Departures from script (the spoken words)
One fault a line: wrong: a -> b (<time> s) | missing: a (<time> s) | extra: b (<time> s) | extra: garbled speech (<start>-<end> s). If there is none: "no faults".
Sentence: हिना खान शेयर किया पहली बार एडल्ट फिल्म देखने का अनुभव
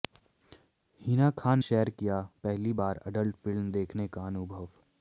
no faults